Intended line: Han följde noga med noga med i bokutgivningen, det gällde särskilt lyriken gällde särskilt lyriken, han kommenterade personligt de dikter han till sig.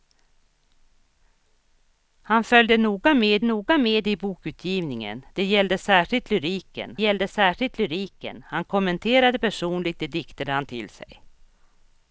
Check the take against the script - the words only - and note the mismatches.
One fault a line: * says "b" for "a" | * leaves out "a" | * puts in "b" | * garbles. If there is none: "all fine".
all fine